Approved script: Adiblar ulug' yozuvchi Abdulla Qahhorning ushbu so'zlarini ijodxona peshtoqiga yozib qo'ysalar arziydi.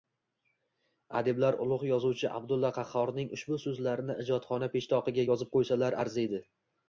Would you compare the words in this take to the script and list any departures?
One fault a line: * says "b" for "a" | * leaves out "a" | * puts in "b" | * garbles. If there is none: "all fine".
all fine